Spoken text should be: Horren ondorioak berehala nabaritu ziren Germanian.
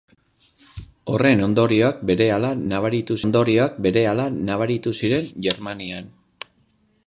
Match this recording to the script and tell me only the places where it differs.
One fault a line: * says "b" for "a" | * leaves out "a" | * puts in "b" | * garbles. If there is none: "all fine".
* puts in "ondorioak berehala nabaritu"